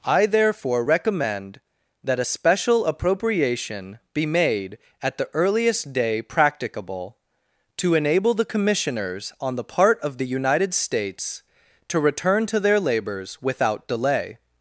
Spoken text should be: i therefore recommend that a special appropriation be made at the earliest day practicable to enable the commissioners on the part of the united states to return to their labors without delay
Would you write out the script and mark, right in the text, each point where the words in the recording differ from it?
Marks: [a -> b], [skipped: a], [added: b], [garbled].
i therefore recommend that a special appropriation be made at the earliest day practicable to enable the commissioners on the part of the united states to return to their labors without delay